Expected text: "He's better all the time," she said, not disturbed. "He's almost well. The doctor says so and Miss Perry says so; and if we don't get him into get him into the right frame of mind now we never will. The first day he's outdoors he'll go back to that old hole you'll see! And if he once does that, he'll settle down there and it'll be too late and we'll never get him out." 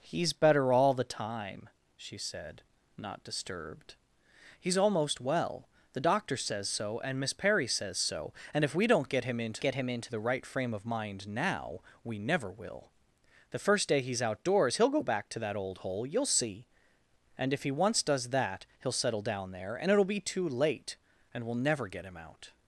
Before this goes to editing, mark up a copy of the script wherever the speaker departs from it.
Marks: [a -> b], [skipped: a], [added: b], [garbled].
"He's better all the time," she said, not disturbed. "He's almost well. The doctor says so and Miss Perry says so; and if we don't get him into get him into the right frame of mind now we never will. The first day he's outdoors he'll go back to that old hole you'll see! And if he once does that, he'll settle down there and it'll be too late and we'll never get him out."